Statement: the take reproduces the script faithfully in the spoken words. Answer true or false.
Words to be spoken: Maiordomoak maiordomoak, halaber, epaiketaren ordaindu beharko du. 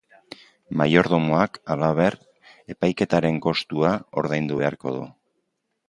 false